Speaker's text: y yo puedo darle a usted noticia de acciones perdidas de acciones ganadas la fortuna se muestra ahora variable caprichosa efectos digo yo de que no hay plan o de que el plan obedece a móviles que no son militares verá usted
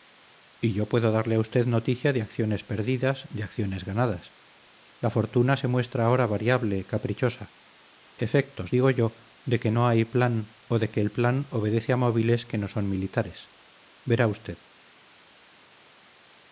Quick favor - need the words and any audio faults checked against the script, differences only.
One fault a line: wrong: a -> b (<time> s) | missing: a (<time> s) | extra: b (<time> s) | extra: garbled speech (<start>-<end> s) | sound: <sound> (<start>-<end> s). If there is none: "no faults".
no faults